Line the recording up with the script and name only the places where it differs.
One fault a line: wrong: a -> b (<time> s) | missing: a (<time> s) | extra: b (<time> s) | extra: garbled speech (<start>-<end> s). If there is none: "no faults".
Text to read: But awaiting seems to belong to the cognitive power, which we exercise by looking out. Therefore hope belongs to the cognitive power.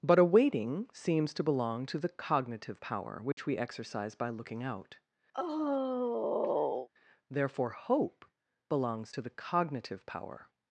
no faults